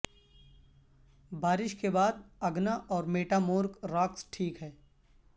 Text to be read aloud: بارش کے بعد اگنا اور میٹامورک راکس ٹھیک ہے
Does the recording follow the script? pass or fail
pass